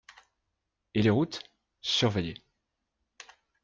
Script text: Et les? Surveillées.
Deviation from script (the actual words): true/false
true